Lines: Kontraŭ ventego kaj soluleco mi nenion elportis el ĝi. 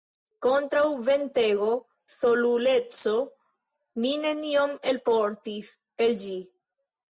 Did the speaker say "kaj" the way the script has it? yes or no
no